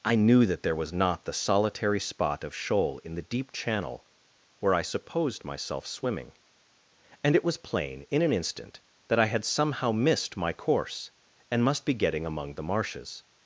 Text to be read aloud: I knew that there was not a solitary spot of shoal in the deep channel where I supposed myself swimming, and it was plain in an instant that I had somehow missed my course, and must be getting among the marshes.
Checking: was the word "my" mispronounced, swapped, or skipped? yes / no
no